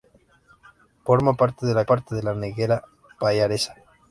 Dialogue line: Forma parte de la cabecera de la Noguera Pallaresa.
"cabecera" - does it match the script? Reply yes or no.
no